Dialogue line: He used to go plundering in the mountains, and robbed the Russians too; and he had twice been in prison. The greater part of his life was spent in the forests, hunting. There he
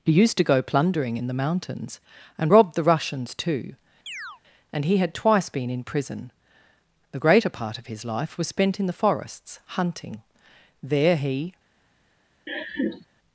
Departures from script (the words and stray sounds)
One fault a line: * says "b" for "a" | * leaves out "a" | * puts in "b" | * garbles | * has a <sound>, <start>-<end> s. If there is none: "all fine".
* has a chirp, 4.1-4.4 s
* has a laugh, 12.5-13.1 s